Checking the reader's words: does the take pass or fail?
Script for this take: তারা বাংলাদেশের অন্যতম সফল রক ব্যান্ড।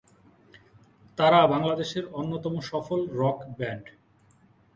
pass